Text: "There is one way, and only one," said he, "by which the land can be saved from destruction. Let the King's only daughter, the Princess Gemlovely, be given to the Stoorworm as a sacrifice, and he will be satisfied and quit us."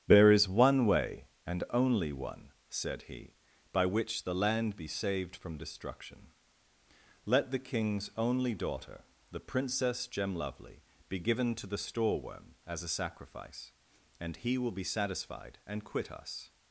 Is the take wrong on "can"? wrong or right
wrong